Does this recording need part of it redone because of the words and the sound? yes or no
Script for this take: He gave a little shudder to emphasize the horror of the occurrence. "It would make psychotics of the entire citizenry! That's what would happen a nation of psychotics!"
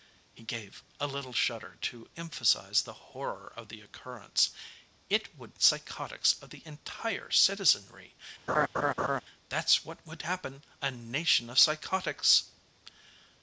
yes